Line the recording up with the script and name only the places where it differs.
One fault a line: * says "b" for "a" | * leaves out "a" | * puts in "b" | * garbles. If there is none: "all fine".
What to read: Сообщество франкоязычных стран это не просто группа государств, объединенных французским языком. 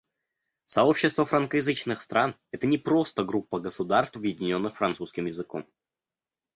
all fine